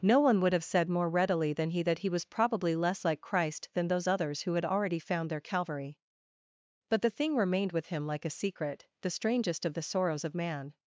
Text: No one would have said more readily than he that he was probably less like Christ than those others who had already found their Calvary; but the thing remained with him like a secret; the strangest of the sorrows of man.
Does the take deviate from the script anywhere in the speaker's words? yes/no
no